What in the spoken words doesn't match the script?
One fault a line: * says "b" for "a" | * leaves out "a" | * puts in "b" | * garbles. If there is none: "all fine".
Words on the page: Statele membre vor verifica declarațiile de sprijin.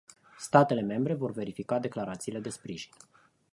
all fine